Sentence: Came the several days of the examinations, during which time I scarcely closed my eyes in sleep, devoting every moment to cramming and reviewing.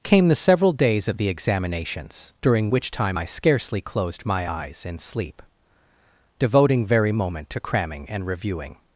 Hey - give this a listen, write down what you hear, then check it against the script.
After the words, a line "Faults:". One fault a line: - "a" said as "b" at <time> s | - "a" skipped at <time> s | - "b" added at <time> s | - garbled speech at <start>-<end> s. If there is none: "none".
Came the several days of the examinations, during which time I scarcely closed my eyes in sleep, devoting very moment to cramming and reviewing.
Faults:
- "every" said as "very" at 6.9 s